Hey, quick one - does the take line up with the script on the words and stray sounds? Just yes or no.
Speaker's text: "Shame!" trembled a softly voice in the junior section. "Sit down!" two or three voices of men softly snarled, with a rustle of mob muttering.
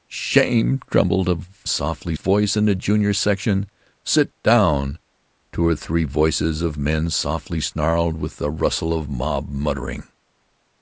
yes